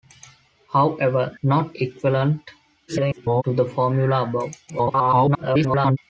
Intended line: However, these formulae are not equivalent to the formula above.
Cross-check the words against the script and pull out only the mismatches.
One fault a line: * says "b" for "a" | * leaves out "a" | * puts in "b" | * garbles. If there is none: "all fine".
* leaves out "these formulae are"
* garbles
* garbles